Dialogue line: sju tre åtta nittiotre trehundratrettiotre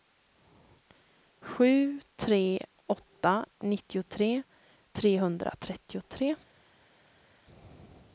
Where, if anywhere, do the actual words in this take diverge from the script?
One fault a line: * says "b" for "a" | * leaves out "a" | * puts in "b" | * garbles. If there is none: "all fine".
all fine